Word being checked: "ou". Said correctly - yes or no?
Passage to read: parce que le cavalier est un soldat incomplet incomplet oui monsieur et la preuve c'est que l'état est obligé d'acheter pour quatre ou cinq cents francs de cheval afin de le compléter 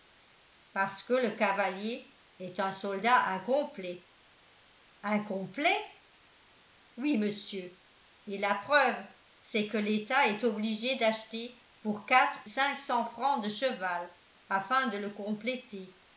no